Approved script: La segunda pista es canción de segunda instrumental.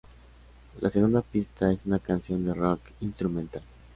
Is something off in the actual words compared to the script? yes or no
yes